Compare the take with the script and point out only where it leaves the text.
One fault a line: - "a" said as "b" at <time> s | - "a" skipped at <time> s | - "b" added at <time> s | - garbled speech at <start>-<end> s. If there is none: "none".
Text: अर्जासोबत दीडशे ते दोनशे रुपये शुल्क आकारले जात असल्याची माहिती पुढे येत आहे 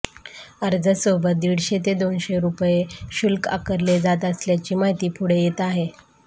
none